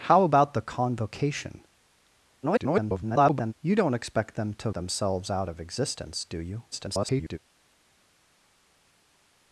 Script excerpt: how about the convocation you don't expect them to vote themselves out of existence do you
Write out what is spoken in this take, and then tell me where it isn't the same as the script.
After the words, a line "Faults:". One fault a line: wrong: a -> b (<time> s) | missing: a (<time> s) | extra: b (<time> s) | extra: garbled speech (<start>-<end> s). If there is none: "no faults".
how about the convocation [garbled] you don't expect them to themselves out of existence do you [garbled]
Faults:
extra: garbled speech (2.4-3.5 s)
missing: vote (4.7 s)
extra: garbled speech (6.7-7.4 s)